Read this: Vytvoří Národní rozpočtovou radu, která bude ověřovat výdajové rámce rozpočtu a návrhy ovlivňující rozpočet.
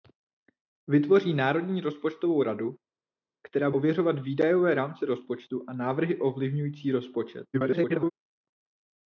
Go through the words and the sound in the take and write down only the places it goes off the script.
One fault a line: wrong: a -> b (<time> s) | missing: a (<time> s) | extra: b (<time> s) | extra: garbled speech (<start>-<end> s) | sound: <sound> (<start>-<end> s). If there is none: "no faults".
missing: bude (3.7 s)
extra: garbled speech (7.5-8.1 s)